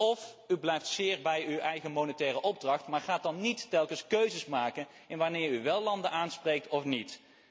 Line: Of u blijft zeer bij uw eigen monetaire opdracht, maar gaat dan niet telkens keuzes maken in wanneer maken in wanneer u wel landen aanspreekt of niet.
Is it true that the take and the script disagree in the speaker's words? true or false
true